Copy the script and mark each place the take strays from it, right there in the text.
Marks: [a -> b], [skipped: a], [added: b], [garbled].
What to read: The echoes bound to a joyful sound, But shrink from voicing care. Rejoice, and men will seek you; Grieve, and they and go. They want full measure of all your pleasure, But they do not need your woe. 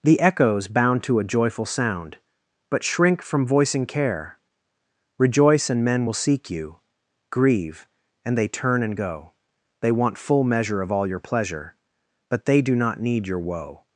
The echoes bound to a joyful sound, But shrink from voicing care. Rejoice, and men will seek you; Grieve, and they [added: turn] and go. They want full measure of all your pleasure, But they do not need your woe.